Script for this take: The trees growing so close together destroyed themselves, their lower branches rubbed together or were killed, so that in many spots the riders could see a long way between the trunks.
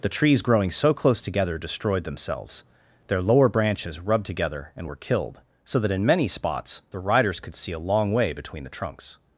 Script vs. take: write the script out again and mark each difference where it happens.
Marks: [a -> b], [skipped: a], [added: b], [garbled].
The trees growing so close together destroyed themselves, their lower branches rubbed together [or -> and] were killed, so that in many spots the riders could see a long way between the trunks.